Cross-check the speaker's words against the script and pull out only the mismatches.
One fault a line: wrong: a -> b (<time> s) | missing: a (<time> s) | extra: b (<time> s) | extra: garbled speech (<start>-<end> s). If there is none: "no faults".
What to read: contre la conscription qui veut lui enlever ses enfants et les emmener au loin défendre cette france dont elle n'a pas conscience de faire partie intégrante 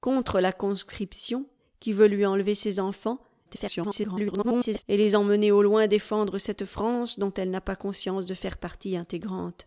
extra: garbled speech (3.5-4.8 s)